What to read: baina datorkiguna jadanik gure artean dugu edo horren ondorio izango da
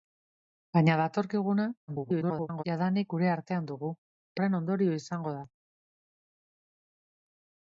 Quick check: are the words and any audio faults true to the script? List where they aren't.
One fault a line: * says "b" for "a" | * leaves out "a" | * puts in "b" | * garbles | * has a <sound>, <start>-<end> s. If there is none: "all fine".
* garbles
* leaves out "edo"